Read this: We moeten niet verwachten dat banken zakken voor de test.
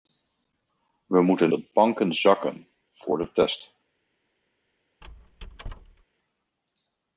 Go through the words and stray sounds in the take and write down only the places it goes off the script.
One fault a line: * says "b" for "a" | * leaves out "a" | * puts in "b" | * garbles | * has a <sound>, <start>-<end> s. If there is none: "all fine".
* leaves out "niet verwachten"
* has a squeak, 5.0-6.0 s